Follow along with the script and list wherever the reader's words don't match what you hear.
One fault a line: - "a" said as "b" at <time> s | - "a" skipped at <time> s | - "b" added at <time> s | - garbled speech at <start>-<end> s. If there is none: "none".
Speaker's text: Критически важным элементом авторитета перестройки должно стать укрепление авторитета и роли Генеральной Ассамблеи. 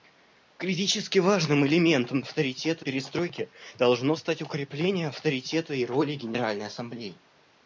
none